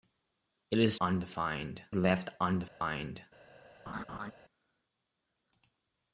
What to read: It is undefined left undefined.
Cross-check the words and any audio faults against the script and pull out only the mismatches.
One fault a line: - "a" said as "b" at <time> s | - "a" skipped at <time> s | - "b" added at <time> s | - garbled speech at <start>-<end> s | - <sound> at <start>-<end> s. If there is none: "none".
- dropout at 2.7-2.8 s
- laugh at 3.9-4.3 s